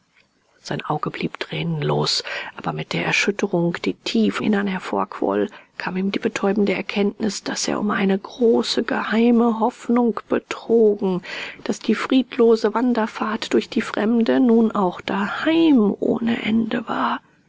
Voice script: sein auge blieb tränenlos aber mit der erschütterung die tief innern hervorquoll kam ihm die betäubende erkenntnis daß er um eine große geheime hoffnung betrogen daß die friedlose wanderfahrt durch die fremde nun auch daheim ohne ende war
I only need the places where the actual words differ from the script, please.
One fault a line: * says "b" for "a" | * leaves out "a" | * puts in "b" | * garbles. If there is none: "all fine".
all fine